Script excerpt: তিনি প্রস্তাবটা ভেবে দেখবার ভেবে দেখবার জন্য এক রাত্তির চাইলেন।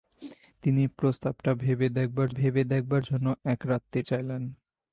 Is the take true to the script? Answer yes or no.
yes